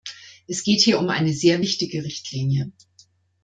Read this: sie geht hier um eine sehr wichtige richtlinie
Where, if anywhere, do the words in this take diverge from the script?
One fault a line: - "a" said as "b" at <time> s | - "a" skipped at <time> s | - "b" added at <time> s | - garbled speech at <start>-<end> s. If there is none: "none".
- "sie" said as "es" at 0.5 s